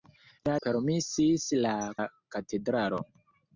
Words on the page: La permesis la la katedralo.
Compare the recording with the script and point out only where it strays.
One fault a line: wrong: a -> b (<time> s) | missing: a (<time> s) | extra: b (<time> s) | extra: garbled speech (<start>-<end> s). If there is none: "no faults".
no faults